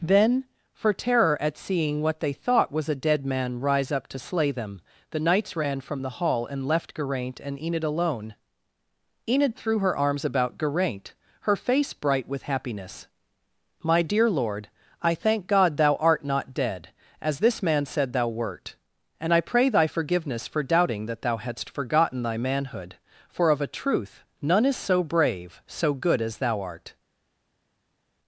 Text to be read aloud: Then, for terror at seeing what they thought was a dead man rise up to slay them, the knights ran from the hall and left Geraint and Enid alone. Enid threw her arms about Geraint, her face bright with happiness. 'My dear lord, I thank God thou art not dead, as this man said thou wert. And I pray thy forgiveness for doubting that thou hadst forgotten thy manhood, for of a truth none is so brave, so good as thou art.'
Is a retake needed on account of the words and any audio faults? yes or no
no